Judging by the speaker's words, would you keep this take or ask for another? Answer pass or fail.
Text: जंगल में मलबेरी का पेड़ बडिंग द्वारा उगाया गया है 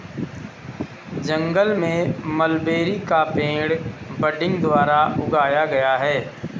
pass